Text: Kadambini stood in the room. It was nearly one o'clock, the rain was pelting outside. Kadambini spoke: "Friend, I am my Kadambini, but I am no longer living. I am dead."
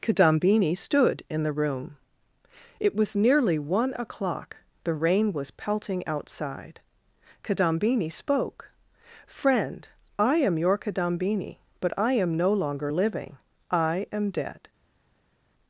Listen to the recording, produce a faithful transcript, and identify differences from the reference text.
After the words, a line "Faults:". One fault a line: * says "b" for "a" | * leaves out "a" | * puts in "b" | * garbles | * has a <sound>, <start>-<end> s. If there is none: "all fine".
Kadambini stood in the room. It was nearly one o'clock, the rain was pelting outside. Kadambini spoke: "Friend, I am your Kadambini, but I am no longer living. I am dead."
Faults:
* says "your" for "my"